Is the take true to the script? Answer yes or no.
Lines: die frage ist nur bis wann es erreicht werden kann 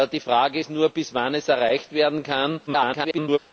no